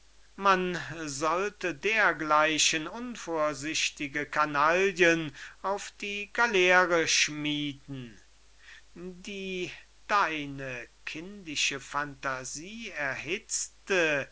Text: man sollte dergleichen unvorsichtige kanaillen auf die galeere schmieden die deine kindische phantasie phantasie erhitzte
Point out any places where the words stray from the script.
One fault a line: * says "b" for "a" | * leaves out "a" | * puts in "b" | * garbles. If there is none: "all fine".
* leaves out "phantasie"